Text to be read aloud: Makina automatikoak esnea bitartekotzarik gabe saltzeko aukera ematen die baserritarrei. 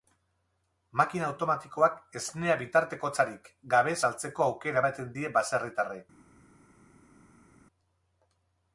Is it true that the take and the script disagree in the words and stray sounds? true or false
false